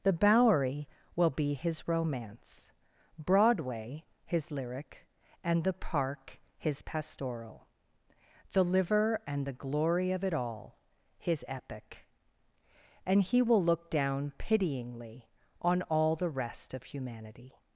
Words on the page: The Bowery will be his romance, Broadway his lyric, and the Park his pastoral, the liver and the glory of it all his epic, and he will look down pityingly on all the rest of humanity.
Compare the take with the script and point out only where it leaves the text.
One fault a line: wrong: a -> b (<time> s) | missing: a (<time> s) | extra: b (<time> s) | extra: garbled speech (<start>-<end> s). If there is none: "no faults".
no faults